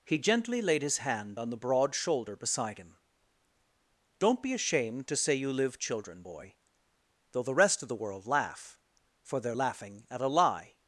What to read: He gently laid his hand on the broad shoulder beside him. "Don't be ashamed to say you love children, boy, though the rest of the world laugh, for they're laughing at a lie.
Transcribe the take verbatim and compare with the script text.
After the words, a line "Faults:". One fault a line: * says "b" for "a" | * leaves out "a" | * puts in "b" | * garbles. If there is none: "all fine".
He gently laid his hand on the broad shoulder beside him. "Don't be ashamed to say you live children, boy, though the rest of the world laugh, for they're laughing at a lie.
Faults:
* says "live" for "love"